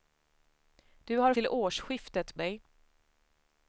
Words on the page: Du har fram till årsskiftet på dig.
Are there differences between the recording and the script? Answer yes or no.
yes